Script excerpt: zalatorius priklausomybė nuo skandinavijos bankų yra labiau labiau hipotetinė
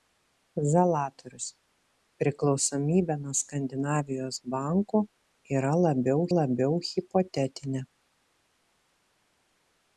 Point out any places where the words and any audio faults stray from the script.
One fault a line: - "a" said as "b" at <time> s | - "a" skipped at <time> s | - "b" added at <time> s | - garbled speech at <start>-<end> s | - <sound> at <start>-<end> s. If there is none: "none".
none